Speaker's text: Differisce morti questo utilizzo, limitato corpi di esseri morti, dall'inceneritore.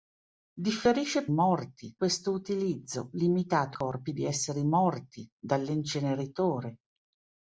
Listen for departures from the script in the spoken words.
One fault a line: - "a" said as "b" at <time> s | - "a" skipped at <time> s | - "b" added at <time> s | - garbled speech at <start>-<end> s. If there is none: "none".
none